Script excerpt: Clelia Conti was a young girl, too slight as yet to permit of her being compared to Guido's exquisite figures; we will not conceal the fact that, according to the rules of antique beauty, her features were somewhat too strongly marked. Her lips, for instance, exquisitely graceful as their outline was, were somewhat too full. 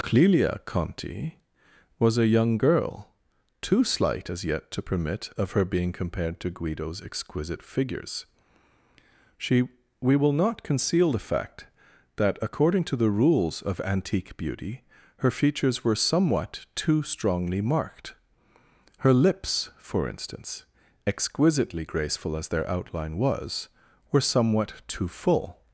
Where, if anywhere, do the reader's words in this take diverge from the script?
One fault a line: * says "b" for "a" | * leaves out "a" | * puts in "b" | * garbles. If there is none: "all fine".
* puts in "she"